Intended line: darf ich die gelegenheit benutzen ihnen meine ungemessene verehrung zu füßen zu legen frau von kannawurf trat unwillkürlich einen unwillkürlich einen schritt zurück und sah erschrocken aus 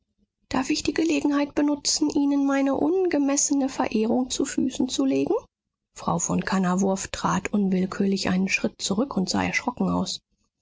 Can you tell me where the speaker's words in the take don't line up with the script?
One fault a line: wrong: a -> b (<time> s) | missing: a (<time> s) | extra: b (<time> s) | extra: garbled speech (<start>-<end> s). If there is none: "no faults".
missing: unwillkürlich einen (8.5 s)